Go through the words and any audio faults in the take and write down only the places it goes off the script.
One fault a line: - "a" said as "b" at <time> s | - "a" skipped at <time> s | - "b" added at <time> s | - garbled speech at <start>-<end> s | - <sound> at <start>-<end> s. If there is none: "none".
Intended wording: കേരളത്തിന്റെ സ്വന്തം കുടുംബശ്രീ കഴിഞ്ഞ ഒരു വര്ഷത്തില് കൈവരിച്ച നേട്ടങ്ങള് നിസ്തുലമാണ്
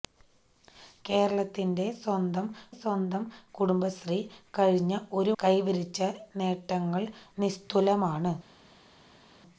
- "സ്വന്തം" added at 2.8 s
- "വര്ഷത്തില്" skipped at 5.3 s